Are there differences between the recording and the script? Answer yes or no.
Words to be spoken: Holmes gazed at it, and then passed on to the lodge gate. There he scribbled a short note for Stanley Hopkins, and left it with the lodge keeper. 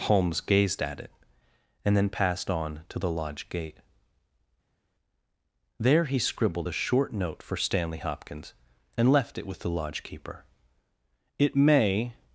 yes